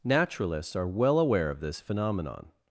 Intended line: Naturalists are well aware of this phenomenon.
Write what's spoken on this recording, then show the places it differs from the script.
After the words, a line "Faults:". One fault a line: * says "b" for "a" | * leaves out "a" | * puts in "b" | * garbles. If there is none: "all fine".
Naturalists are well aware of this phenomenon.
Faults:
all fine